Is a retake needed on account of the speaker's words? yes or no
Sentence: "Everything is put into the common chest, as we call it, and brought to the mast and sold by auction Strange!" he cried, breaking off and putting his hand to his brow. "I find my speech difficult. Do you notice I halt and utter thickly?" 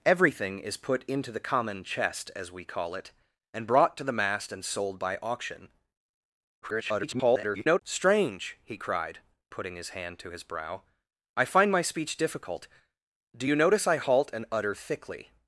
yes